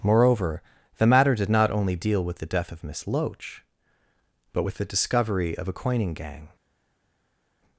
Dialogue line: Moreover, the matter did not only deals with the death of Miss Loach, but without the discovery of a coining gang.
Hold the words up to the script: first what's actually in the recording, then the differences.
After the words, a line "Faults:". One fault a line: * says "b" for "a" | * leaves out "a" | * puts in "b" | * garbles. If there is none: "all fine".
Moreover, the matter did not only deal with the death of Miss Loach, but with the discovery of a coining gang.
Faults:
* says "deal" for "deals"
* says "with" for "without"